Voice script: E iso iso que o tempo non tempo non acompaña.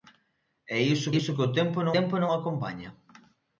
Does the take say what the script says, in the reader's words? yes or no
yes